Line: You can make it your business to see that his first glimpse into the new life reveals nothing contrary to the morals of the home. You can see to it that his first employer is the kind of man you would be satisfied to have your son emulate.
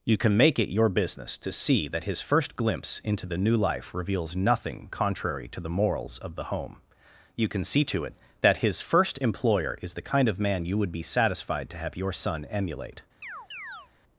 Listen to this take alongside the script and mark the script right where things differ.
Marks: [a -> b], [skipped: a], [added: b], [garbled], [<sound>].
You can make it your business to see that his first glimpse into the new life reveals nothing contrary to the morals of the home. You can see to it that his first employer is the kind of man you would be satisfied to have your son emulate. [chirp]